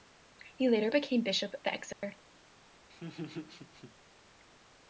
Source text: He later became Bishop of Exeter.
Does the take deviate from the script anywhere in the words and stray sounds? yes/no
yes